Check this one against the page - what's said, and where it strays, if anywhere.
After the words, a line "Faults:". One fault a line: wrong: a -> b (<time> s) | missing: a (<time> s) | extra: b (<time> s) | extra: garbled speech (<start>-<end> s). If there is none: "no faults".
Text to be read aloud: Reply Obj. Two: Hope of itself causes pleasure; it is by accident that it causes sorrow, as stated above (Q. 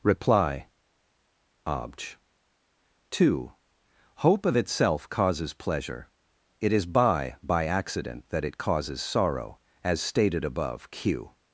Reply Obj. Two: Hope of itself causes pleasure; it is by by accident that it causes sorrow, as stated above (Q.
Faults:
extra: by (7.4 s)